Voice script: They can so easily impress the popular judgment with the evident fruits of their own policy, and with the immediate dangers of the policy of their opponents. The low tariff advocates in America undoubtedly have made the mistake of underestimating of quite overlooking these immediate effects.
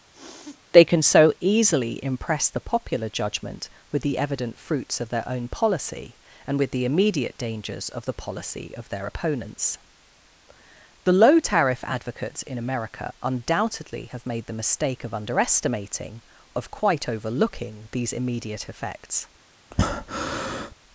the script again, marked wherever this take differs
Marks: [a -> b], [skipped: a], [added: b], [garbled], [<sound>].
[sniff] They can so easily impress the popular judgment with the evident fruits of their own policy, and with the immediate dangers of the policy of their opponents. The low tariff advocates in America undoubtedly have made the mistake of underestimating of quite overlooking these immediate effects. [breath]